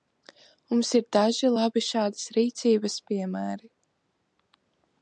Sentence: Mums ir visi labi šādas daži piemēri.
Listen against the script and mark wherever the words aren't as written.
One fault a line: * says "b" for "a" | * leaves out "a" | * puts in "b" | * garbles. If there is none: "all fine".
* says "daži" for "visi"
* says "rīcības" for "daži"